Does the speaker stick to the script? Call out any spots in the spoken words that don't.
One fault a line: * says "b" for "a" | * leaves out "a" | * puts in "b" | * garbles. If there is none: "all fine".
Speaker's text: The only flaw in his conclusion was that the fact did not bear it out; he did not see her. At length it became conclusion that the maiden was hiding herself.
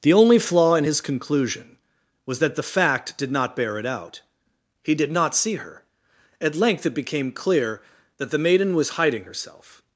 * says "clear" for "conclusion"